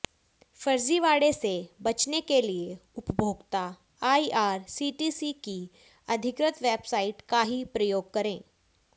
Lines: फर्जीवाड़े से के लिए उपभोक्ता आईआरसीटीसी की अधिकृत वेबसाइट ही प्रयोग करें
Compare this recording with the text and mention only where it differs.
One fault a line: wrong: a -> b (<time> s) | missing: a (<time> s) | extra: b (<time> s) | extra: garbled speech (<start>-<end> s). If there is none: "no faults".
extra: बचने (1.8 s)
extra: का (7.3 s)